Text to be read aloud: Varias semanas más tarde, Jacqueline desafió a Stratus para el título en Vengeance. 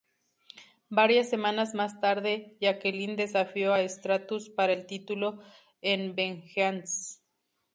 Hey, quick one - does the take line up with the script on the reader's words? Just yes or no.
yes